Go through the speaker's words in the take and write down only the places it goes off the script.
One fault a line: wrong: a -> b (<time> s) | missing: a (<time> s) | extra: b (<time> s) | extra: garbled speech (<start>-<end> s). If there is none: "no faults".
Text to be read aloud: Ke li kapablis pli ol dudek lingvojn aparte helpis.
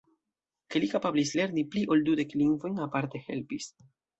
extra: lerni (1.4 s)